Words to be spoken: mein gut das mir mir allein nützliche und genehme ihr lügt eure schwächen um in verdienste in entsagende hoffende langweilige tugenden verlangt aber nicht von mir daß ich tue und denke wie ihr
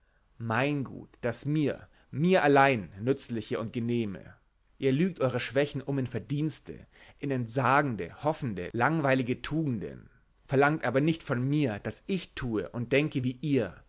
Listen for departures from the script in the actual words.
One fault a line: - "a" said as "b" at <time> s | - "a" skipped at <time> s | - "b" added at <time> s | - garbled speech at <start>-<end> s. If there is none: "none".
none